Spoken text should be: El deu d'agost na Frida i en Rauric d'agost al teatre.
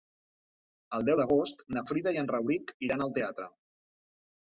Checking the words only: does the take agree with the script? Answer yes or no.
no